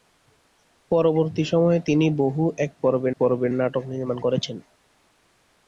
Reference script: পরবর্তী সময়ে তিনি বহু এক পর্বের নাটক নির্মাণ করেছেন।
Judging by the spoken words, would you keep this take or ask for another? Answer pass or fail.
fail